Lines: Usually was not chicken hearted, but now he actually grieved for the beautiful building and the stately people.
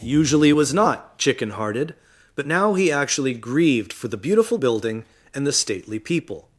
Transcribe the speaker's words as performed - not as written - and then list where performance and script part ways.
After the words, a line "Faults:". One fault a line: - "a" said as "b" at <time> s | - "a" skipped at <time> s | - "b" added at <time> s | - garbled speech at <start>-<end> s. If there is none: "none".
Usually was not chicken hearted, but now he actually grieved for the beautiful building and the stately people.
Faults:
none